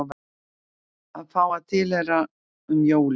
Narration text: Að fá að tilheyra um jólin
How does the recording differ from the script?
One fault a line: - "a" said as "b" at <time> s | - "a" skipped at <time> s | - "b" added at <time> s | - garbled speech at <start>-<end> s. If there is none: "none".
none